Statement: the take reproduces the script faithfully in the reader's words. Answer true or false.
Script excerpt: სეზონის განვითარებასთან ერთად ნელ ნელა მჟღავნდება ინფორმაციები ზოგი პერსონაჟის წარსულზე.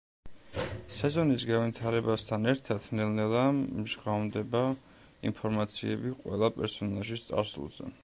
false